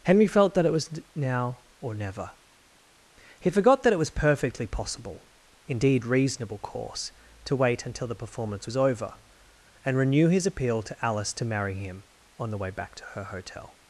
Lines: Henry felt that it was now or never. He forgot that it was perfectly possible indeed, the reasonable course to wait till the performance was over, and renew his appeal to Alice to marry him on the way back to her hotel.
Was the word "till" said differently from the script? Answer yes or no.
yes